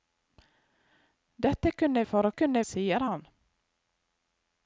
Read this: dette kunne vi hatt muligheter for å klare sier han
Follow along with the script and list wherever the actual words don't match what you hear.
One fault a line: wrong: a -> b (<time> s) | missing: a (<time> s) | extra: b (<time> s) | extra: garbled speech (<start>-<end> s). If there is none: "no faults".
missing: vi hatt muligheter (2.0 s)
wrong: klare -> kunne (2.3 s)